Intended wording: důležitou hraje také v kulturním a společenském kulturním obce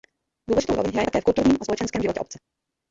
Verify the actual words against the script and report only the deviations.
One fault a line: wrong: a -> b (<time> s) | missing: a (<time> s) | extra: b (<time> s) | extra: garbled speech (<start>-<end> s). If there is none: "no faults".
extra: roli (0.8 s)
wrong: kulturním -> životě (2.0 s)